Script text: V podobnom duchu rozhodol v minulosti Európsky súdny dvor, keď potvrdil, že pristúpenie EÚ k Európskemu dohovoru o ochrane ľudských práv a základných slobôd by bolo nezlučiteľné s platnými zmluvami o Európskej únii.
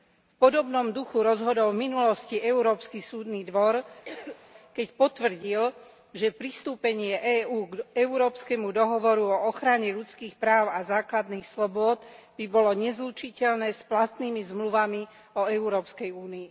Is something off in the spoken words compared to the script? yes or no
no